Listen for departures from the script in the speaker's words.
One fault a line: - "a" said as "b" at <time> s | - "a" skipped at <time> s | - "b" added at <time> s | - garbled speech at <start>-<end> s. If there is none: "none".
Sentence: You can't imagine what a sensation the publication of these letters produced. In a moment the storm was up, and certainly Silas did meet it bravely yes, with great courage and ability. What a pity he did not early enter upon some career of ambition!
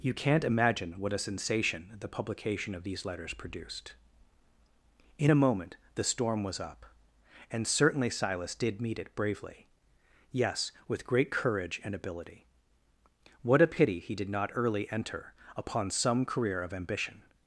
none